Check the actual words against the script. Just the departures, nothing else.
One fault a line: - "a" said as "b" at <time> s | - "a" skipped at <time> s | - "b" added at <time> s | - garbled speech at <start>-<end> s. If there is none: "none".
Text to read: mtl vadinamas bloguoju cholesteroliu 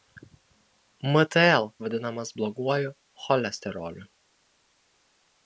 none